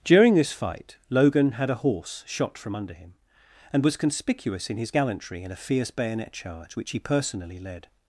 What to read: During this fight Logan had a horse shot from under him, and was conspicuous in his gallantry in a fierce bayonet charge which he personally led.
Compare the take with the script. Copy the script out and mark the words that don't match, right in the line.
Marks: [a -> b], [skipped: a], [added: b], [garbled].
During this fight Logan had a horse shot from under him, and was conspicuous in his gallantry in a fierce bayonet charge which he personally led.